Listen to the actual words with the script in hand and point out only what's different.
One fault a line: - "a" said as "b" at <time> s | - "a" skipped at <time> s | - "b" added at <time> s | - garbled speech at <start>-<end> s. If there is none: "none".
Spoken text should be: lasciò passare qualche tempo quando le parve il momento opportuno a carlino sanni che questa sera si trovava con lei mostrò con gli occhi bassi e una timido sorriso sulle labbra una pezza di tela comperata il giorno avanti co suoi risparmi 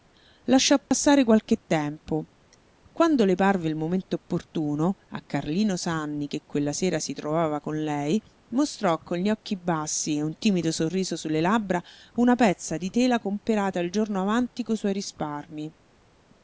- "questa" said as "quella" at 6.4 s
- "una" said as "un" at 10.2 s